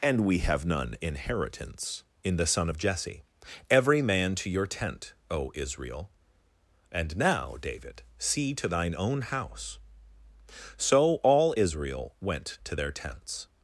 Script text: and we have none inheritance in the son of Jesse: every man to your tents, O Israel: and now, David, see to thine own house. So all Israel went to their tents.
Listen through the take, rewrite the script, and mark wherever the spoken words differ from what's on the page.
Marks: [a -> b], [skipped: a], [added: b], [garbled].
and we have none inheritance in the son of Jesse: every man to your [tents, -> tent] O Israel: and now, David, see to thine own house. So all Israel went to their tents.